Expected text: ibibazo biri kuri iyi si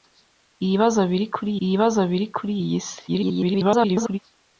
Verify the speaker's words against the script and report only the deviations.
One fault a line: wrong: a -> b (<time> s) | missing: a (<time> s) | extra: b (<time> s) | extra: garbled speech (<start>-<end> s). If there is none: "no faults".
extra: ibibazo biri kuri (1.6 s)
extra: garbled speech (3.1-4.2 s)